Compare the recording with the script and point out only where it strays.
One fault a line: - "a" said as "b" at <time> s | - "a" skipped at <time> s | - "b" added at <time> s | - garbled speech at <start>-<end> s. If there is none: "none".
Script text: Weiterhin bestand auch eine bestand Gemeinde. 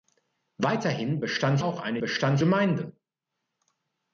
none